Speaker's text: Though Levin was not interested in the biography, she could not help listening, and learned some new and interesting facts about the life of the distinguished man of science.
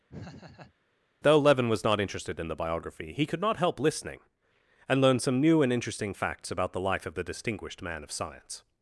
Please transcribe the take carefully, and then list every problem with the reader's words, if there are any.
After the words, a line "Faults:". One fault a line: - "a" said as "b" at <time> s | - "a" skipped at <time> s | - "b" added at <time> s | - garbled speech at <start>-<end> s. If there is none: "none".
Though Levin was not interested in the biography, he could not help listening, and learned some new and interesting facts about the life of the distinguished man of science.
Faults:
- "she" said as "he" at 3.1 s